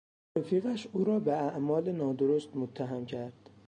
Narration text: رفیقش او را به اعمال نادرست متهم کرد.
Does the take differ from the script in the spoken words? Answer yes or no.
no